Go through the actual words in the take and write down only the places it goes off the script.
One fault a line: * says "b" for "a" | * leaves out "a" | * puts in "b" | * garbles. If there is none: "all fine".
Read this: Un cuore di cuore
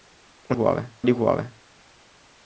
all fine